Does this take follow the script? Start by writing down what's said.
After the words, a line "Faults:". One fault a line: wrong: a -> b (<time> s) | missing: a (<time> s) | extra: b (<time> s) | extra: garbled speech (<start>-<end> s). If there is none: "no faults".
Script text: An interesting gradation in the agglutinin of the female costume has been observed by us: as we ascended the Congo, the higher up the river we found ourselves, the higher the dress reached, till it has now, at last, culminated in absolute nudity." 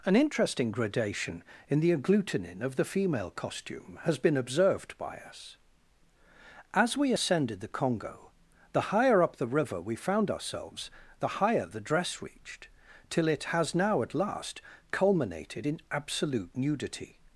An interesting gradation in the agglutinin of the female costume has been observed by us: as we ascended the Congo, the higher up the river we found ourselves, the higher the dress reached, till it has now, at last, culminated in absolute nudity."
Faults:
no faults